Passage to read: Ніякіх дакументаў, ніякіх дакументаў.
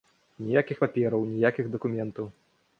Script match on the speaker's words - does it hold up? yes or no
no